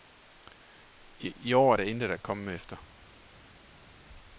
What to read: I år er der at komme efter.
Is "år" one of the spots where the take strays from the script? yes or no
no